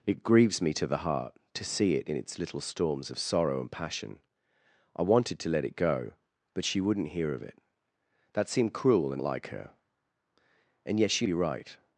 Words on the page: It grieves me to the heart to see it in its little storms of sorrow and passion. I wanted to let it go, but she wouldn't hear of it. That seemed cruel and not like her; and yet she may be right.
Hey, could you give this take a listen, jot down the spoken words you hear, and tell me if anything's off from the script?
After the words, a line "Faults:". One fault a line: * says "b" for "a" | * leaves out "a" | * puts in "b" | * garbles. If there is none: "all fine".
It grieves me to the heart to see it in its little storms of sorrow and passion. I wanted to let it go, but she wouldn't hear of it. That seemed cruel and like her; and yet she be right.
Faults:
* leaves out "not"
* leaves out "may"